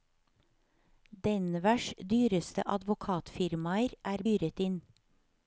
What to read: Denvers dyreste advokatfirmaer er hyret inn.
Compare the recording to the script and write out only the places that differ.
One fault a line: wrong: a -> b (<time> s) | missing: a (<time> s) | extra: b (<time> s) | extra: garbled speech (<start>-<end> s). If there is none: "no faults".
no faults